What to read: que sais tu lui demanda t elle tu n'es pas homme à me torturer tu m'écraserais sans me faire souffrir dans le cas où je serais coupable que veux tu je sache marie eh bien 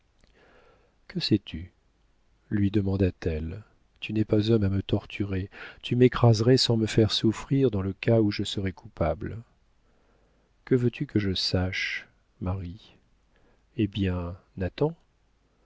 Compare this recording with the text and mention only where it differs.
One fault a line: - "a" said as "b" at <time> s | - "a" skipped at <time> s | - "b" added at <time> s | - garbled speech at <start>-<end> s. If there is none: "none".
- "que" added at 11.0 s